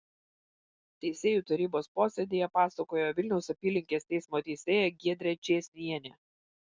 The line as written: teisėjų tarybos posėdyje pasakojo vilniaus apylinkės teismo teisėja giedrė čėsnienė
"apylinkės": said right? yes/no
yes